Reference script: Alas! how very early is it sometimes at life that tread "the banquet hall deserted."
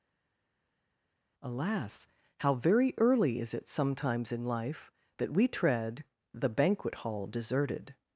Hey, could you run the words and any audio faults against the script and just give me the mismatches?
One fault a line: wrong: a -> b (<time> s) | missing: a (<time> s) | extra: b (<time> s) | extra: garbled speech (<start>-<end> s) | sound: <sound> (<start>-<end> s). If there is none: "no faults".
wrong: at -> in (4.3 s)
extra: we (5.3 s)